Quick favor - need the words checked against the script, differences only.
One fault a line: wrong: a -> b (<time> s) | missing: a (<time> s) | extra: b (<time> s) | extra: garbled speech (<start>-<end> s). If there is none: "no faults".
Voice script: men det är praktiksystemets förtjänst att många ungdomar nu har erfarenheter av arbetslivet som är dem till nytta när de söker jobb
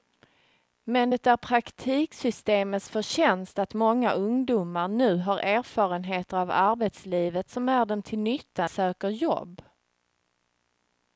missing: när de (8.7 s)